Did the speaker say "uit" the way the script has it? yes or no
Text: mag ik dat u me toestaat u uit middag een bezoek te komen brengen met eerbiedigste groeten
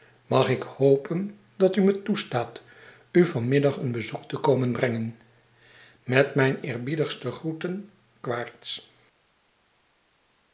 no